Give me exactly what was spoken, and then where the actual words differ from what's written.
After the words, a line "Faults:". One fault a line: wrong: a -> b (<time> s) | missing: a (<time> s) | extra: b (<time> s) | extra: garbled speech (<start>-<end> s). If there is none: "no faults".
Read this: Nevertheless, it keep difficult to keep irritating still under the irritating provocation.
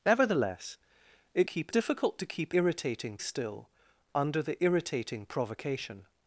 Nevertheless, it keep difficult to keep irritating still under the irritating provocation.
Faults:
no faults